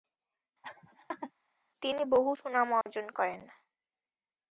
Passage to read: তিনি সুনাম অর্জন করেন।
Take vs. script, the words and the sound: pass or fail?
fail